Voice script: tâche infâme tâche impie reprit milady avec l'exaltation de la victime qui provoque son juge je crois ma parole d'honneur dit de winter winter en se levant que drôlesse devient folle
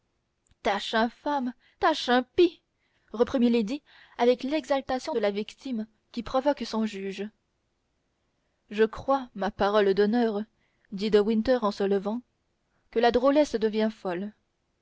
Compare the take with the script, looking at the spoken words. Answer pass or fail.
fail